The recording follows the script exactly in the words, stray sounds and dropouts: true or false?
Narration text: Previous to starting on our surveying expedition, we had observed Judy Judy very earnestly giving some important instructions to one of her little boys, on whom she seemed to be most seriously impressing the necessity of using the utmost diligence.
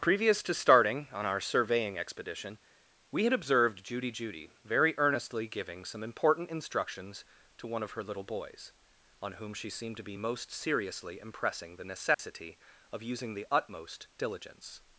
false